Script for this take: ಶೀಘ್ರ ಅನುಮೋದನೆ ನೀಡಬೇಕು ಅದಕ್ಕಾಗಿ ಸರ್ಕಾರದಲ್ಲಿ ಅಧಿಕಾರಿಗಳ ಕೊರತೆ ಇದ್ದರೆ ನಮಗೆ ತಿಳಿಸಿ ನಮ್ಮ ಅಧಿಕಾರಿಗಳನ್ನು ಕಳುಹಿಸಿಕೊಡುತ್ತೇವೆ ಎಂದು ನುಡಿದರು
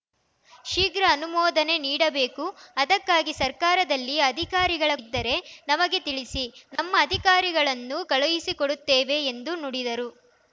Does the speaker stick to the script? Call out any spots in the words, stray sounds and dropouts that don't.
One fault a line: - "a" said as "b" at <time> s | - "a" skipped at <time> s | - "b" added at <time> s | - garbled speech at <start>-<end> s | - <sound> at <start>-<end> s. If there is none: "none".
- "ಕೊರತೆ" skipped at 4.9 s
- dropout at 6.8-6.8 s